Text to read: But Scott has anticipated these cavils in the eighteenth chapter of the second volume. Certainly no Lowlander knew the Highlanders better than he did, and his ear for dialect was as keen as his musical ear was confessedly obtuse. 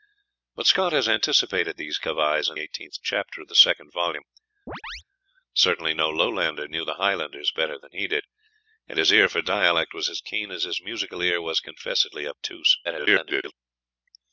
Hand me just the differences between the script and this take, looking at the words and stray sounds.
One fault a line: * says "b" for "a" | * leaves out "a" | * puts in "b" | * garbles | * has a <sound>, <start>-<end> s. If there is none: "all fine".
* leaves out "the"
* has a chirp, 4.7-5.0 s
* garbles